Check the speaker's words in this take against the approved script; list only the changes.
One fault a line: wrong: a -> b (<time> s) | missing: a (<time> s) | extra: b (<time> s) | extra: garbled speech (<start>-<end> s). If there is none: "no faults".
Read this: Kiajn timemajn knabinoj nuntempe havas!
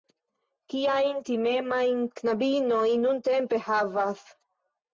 no faults